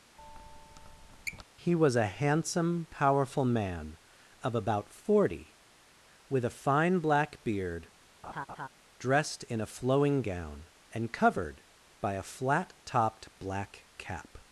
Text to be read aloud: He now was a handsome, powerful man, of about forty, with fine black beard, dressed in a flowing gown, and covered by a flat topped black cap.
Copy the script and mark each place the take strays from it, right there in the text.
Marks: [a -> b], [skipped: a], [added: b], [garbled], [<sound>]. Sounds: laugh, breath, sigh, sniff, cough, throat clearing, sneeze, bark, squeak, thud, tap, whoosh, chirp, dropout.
[squeak] He [skipped: now] was a handsome, powerful man, of about forty, with [added: a] fine black beard, [laugh] dressed in a flowing gown, and covered by a flat topped black cap.